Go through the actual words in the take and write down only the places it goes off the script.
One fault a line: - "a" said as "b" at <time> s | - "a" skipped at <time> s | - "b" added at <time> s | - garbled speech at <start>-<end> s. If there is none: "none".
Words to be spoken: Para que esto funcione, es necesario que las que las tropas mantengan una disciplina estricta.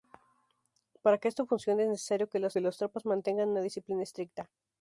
none